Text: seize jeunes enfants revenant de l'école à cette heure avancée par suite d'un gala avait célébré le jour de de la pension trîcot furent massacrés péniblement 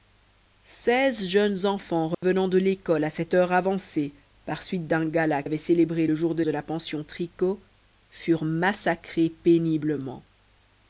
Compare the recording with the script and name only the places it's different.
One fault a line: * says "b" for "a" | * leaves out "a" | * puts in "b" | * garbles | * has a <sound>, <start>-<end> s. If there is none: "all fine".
* has a dropout, 2.1-2.2 s